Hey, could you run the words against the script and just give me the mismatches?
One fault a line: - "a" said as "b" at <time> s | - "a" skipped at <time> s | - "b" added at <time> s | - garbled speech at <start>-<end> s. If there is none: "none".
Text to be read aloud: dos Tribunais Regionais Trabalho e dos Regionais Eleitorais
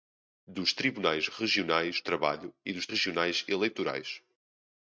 none